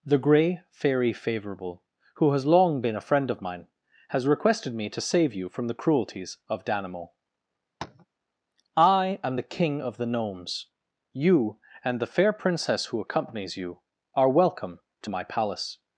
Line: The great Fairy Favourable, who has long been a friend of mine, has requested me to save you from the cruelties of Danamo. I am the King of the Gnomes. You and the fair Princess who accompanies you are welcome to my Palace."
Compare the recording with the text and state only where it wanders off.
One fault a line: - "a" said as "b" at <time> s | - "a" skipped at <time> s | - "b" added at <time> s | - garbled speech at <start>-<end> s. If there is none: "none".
- "great" said as "grey" at 0.2 s